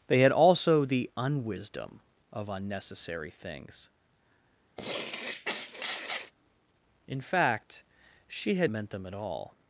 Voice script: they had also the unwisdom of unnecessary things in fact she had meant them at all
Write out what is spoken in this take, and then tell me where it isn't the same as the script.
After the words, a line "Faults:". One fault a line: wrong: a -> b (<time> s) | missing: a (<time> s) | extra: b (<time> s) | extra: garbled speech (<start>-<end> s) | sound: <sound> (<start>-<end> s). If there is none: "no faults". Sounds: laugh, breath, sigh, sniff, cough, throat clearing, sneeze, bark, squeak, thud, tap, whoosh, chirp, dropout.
they had also the unwisdom of unnecessary things in fact she had meant them at all
Faults:
sound: sniff (4.8-6.3 s)